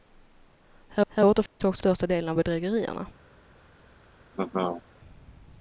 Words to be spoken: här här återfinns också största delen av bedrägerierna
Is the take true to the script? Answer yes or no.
yes